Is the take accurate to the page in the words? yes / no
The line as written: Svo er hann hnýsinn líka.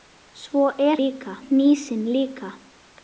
no